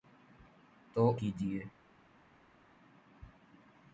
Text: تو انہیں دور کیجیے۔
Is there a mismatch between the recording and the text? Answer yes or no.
yes